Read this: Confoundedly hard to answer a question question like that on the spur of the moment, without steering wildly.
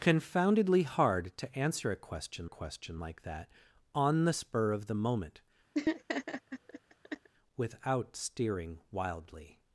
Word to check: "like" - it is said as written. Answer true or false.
true